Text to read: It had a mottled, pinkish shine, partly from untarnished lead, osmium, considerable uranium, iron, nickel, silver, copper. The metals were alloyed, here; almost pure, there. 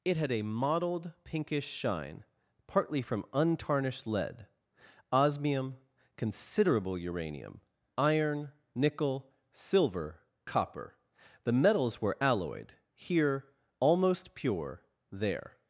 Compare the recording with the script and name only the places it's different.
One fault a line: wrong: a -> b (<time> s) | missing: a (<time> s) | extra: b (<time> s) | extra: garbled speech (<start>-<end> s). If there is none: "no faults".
no faults